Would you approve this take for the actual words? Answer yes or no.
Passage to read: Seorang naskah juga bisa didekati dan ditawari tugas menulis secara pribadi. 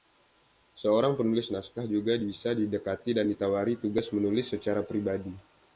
no